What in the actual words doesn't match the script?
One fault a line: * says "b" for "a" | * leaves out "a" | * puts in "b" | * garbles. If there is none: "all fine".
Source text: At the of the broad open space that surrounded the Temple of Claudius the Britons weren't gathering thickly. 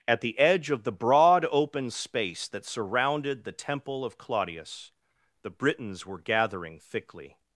* puts in "edge"
* says "were" for "weren't"